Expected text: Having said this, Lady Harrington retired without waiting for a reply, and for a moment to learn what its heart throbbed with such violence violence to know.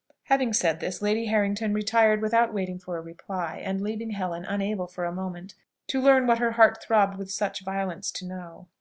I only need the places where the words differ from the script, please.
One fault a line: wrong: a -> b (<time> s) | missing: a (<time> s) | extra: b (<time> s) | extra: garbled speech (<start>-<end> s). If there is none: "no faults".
extra: leaving Helen unable (3.8 s)
wrong: its -> her (6.4 s)
missing: violence (8.1 s)